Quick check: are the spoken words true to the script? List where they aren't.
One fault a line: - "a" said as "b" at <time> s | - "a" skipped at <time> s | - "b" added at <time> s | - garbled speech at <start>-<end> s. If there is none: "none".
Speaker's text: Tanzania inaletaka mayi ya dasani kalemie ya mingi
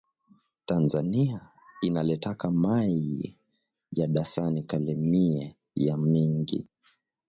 none